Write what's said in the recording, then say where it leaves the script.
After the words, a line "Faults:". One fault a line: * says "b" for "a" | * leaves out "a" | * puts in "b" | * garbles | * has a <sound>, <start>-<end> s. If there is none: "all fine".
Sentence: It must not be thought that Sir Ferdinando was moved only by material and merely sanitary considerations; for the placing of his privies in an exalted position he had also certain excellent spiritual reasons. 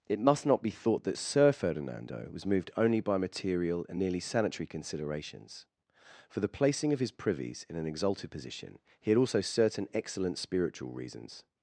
It must not be thought that Sir Ferdinando was moved only by material and nearly sanitary considerations; for the placing of his privies in an exalted position he had also certain excellent spiritual reasons.
Faults:
* says "nearly" for "merely"